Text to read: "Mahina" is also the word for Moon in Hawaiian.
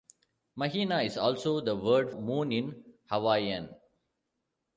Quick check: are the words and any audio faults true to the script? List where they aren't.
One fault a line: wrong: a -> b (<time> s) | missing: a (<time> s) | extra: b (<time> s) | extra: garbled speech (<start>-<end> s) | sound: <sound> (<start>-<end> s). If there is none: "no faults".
missing: for (2.1 s)